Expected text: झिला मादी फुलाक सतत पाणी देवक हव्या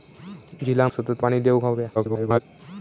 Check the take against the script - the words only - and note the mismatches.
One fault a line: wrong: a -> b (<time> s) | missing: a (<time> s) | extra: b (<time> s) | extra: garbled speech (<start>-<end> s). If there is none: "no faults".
missing: मादी फुलाक (0.9 s)
extra: garbled speech (1.9-2.4 s)